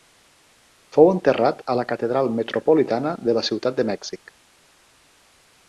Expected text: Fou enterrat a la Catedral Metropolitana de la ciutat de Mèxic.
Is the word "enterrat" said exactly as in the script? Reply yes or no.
yes